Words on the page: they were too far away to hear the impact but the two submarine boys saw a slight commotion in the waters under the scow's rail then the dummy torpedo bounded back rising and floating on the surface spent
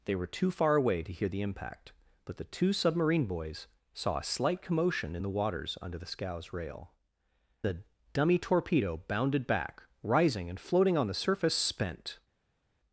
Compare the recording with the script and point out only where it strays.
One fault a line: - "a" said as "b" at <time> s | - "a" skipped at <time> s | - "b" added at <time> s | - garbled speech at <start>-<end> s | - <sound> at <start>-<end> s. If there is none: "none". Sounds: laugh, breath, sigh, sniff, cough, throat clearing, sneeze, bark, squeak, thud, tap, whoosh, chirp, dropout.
- "then" skipped at 6.9 s